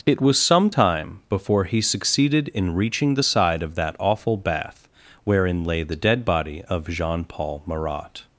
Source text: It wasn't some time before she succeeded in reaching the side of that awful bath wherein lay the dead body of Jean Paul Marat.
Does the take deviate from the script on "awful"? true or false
false